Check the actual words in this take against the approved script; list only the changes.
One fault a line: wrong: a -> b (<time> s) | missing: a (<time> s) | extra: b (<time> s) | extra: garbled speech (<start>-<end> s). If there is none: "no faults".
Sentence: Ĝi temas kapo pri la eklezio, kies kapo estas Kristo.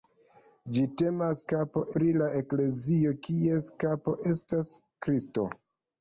no faults